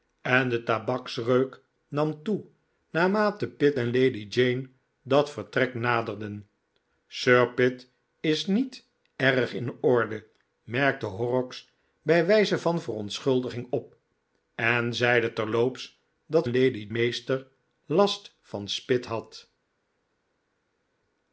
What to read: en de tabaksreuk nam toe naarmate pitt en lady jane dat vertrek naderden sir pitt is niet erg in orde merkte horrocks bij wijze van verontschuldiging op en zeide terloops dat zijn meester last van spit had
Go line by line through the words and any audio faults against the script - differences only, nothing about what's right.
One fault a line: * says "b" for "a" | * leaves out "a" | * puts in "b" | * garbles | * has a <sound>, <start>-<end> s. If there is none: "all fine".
* says "lady" for "zijn"